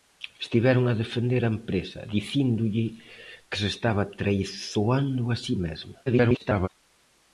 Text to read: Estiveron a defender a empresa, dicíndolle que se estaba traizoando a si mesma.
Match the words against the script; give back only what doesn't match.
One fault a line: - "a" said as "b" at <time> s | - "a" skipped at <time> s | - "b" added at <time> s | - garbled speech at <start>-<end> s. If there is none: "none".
- garbled speech at 6.1-6.7 s